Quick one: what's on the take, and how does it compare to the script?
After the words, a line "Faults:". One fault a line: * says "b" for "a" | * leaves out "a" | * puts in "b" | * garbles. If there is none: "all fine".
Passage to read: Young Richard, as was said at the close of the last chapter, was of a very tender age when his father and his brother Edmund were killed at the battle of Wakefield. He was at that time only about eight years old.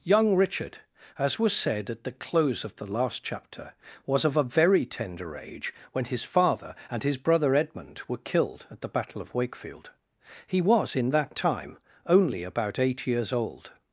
Young Richard, as was said at the close of the last chapter, was of a very tender age when his father and his brother Edmund were killed at the battle of Wakefield. He was in that time only about eight years old.
Faults:
* says "in" for "at"